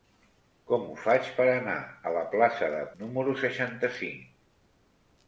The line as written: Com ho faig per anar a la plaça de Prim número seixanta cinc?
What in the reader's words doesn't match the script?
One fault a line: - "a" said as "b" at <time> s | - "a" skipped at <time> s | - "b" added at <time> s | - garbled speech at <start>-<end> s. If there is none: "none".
- "Prim" skipped at 2.8 s